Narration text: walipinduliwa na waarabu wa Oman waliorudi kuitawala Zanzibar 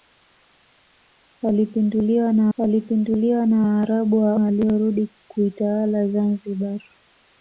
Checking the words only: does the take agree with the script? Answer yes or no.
no